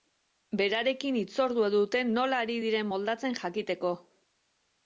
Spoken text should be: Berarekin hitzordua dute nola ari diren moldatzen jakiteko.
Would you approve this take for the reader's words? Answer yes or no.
yes